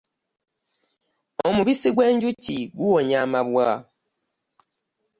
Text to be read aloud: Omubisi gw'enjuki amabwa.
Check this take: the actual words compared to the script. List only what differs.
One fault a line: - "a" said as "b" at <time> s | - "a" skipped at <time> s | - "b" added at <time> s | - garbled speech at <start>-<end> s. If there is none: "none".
- "guwonya" added at 2.8 s